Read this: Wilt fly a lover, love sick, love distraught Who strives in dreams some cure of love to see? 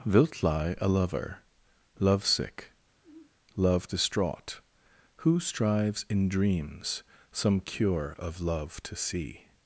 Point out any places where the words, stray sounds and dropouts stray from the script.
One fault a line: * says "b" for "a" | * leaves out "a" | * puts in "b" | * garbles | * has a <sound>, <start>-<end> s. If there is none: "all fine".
* says "lie" for "fly"
* has a sigh, 3.0-3.3 s